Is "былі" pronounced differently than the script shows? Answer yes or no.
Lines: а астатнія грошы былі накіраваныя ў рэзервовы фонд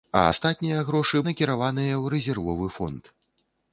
yes